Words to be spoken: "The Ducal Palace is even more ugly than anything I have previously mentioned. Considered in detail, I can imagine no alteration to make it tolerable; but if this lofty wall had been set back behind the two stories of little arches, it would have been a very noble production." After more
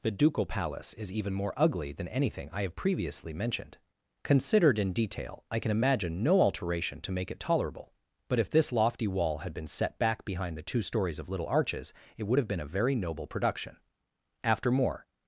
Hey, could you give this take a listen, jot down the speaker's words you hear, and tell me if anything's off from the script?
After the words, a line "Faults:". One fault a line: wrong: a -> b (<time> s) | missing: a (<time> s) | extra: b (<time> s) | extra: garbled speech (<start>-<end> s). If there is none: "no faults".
"The Ducal Palace is even more ugly than anything I have previously mentioned. Considered in detail, I can imagine no alteration to make it tolerable; but if this lofty wall had been set back behind the two stories of little arches, it would have been a very noble production." After more
Faults:
no faults